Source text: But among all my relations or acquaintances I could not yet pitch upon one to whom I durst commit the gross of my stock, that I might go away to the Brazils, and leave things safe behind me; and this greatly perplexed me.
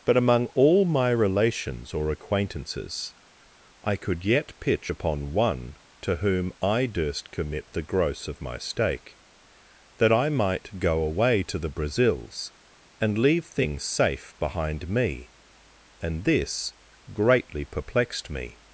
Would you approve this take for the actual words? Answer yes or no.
no